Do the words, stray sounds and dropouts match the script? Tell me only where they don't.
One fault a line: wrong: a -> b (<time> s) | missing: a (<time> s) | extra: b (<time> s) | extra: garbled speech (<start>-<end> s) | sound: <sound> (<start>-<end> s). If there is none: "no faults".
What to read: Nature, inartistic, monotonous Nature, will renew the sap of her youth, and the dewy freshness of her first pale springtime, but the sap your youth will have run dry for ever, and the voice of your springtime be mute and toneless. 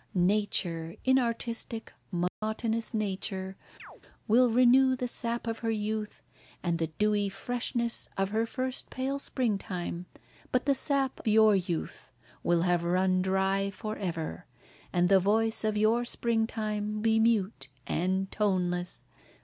sound: dropout (2.3-2.4 s)
sound: chirp (3.8-4.0 s)